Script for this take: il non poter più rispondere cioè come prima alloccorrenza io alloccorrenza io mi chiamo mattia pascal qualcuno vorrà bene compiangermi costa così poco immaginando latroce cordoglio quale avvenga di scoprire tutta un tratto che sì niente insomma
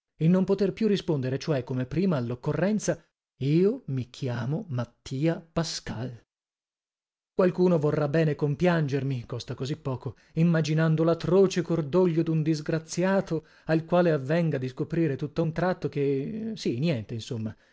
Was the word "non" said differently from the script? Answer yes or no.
no